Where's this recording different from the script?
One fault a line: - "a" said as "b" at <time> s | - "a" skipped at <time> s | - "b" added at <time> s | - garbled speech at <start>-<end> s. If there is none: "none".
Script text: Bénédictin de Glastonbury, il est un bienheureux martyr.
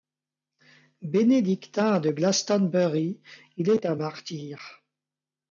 - "bienheureux" skipped at 4.0 s